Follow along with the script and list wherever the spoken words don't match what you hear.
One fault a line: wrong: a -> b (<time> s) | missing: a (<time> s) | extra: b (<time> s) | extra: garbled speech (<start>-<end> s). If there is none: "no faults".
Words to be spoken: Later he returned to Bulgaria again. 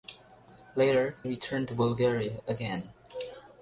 missing: he (1.1 s)